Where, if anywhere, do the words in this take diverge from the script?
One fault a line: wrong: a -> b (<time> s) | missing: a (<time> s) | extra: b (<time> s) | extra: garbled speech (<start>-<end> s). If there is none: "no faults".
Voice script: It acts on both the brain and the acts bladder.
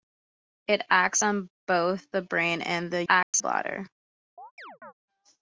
no faults